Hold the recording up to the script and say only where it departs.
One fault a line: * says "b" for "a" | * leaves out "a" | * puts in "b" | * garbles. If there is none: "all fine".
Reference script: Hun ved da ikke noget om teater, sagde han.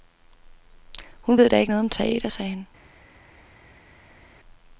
all fine